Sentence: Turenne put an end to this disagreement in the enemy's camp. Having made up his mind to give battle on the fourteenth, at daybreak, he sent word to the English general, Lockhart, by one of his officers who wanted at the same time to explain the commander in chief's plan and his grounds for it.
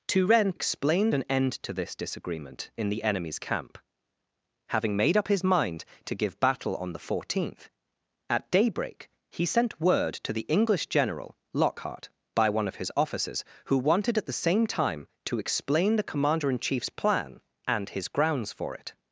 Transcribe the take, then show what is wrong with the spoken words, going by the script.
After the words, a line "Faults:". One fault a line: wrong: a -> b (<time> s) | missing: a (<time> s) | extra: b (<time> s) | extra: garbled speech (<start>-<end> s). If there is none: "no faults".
Turenne explain an end to this disagreement in the enemy's camp. Having made up his mind to give battle on the fourteenth, at daybreak, he sent word to the English general, Lockhart, by one of his officers who wanted at the same time to explain the commander in chief's plan and his grounds for it.
Faults:
wrong: put -> explain (0.5 s)